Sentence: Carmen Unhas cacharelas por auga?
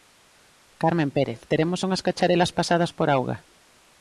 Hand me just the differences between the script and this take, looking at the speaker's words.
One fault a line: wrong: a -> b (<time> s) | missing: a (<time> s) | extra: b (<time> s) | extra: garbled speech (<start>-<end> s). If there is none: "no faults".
extra: Pérez teremos (1.1 s)
extra: pasadas (2.6 s)